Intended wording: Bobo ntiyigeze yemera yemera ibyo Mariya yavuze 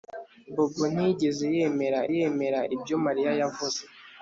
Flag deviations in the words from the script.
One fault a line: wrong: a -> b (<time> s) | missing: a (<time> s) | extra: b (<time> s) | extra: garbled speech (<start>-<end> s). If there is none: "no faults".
no faults